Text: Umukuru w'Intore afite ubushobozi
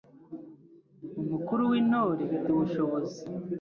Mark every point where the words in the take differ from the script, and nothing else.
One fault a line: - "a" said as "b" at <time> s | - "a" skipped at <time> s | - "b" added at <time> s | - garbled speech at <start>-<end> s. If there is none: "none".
- "afite" skipped at 2.2 s